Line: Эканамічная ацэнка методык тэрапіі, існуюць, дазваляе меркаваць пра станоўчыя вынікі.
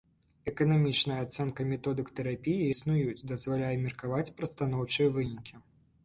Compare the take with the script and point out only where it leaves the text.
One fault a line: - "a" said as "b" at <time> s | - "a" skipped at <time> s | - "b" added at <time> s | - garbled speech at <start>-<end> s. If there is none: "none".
none